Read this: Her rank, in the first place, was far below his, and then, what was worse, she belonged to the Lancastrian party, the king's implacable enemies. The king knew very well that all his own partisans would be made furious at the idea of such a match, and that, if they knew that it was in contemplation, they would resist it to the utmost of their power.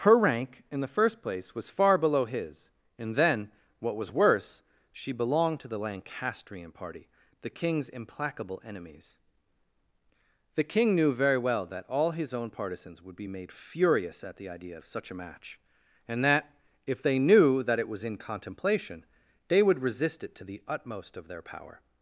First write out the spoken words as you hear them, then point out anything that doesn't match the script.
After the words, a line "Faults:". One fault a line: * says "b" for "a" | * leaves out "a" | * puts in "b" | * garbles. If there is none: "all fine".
Her rank, in the first place, was far below his, and then, what was worse, she belonged to the Lancastrian party, the king's implacable enemies. The king knew very well that all his own partisans would be made furious at the idea of such a match, and that, if they knew that it was in contemplation, they would resist it to the utmost of their power.
Faults:
all fine